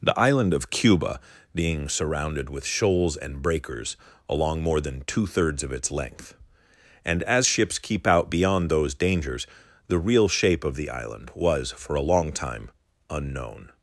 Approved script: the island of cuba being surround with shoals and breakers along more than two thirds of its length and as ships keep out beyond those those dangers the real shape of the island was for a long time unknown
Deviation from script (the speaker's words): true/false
true